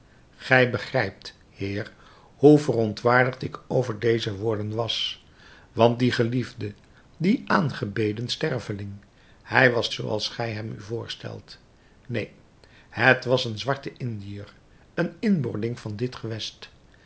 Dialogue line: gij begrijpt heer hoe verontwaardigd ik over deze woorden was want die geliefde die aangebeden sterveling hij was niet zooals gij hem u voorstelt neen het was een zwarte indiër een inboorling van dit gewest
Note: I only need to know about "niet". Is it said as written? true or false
false